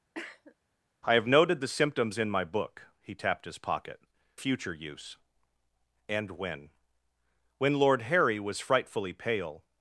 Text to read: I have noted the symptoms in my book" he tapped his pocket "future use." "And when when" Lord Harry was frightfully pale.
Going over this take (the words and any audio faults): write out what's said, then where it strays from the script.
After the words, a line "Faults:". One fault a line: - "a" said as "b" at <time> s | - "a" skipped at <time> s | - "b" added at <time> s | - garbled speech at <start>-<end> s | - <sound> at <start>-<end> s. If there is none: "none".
I have noted the symptoms in my book" he tapped his pocket "future use." "And when when" Lord Harry was frightfully pale.
Faults:
- cough at 0.1-0.6 s